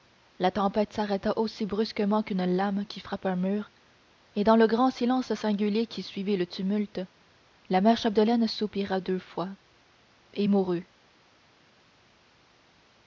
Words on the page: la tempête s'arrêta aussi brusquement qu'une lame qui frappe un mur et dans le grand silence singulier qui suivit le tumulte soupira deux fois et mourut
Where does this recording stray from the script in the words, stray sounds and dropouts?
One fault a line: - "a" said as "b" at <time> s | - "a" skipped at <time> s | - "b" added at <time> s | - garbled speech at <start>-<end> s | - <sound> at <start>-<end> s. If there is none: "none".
- "la mère chapdelaine" added at 7.7 s